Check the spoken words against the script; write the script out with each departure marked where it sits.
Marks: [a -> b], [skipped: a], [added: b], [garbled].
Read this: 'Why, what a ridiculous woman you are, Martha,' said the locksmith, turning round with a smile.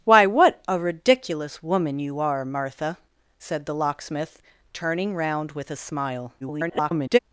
'Why, what a ridiculous woman you are, Martha,' said the locksmith, turning round with a smile. [garbled]